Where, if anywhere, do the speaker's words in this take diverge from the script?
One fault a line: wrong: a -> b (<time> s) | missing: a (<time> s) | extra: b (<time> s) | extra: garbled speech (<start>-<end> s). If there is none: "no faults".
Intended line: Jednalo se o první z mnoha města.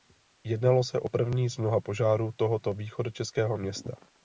extra: požárů tohoto východočeského (1.8 s)